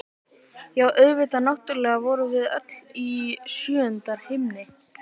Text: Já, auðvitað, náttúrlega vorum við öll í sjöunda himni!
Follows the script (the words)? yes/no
yes